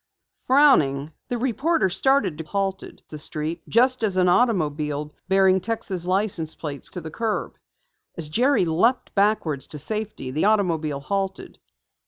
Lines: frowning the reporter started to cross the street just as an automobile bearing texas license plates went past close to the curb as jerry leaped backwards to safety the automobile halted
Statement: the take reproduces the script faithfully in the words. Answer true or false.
false